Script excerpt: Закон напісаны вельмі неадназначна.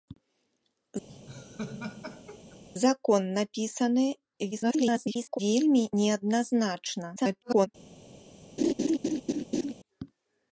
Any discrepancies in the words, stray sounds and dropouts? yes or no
yes